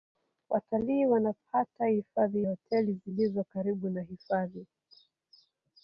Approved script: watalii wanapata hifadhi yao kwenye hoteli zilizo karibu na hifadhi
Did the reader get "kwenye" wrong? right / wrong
wrong